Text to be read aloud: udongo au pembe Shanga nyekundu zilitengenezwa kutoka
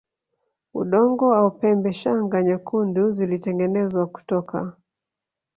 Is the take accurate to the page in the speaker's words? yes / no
yes